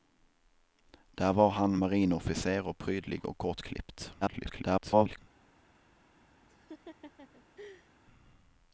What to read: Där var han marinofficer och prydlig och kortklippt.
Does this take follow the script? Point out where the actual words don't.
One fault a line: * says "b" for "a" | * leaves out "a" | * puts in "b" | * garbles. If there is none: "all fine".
* garbles